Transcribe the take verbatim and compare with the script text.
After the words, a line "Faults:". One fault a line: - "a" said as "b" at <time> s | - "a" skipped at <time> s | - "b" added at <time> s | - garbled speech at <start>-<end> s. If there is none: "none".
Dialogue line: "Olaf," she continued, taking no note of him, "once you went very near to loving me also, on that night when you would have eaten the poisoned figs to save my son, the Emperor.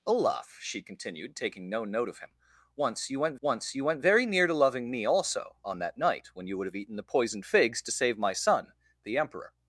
"Olaf," she continued, taking no note of him, "once you went once you went very near to loving me also, on that night when you would have eaten the poisoned figs to save my son, the Emperor.
Faults:
- "once you went" added at 3.4 s